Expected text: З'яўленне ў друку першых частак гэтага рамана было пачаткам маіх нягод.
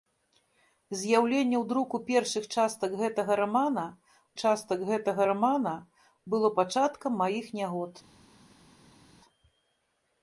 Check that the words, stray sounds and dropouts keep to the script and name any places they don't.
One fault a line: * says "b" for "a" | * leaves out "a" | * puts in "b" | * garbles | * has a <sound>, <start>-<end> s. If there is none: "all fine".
* puts in "частак гэтага рамана"